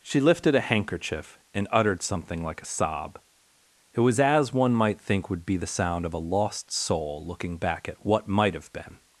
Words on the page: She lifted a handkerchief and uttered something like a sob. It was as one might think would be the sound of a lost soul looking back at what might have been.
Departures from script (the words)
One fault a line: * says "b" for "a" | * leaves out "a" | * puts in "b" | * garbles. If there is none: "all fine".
all fine